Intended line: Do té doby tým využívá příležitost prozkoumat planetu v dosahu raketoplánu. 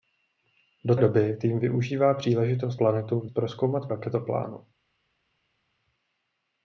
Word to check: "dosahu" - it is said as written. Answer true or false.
false